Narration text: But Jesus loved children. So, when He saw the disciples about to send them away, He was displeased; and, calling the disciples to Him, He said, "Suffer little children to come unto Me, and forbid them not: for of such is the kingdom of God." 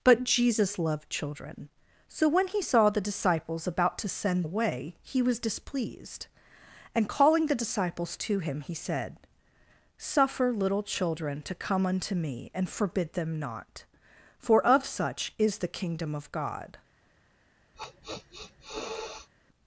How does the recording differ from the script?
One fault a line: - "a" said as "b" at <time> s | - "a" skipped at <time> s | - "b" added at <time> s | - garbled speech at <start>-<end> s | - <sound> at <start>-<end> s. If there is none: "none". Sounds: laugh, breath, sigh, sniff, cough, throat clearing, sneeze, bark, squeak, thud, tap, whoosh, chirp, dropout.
- "them" skipped at 4.5 s
- sniff at 17.7-19.3 s